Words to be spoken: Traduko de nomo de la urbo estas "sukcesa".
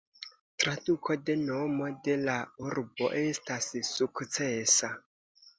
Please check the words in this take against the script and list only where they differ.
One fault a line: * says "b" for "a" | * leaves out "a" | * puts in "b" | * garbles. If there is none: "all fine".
all fine